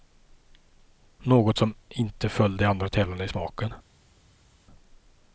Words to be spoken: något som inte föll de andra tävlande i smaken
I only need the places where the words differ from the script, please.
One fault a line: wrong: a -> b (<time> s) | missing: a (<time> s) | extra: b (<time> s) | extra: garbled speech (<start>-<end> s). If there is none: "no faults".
no faults